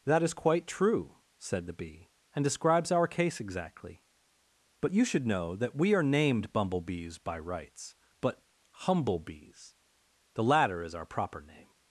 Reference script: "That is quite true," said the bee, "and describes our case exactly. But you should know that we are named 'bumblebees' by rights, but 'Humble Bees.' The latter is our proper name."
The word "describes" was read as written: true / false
true